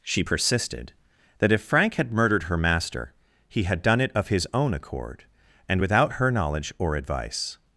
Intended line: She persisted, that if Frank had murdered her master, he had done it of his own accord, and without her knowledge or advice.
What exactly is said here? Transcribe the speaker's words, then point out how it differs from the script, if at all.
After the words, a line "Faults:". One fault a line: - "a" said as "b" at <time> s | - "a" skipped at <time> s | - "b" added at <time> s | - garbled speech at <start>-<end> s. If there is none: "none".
She persisted, that if Frank had murdered her master, he had done it of his own accord, and without her knowledge or advice.
Faults:
none